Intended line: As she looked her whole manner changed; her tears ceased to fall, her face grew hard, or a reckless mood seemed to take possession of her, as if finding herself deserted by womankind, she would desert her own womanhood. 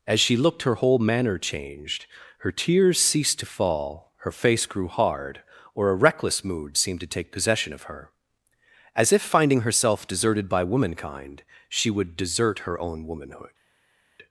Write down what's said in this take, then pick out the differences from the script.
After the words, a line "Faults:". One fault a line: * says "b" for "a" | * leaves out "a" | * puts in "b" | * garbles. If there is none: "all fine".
As she looked her whole manner changed; her tears ceased to fall, her face grew hard, or a reckless mood seemed to take possession of her, as if finding herself deserted by womankind, she would desert her own womanhood.
Faults:
all fine